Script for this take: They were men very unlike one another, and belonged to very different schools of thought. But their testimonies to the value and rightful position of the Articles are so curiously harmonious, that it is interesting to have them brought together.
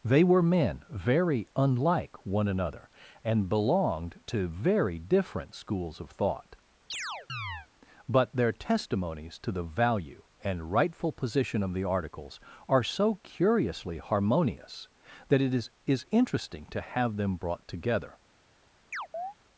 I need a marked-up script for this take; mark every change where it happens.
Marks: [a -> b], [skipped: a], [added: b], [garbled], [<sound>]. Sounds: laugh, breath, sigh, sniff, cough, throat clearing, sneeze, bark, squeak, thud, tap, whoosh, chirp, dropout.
They were men very unlike one another, and belonged to very different schools of thought. [chirp] But their testimonies to the value and rightful position of the Articles are so curiously harmonious, that it is [added: is] interesting to have them brought together. [chirp]